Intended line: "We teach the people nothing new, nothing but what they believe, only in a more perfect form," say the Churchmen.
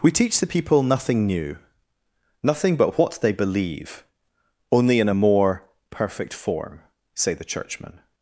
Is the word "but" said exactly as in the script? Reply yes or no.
yes